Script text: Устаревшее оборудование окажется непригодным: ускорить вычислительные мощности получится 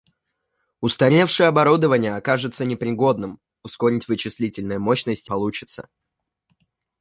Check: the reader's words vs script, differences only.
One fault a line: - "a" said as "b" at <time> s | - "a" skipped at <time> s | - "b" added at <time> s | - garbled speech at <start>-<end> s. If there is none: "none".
none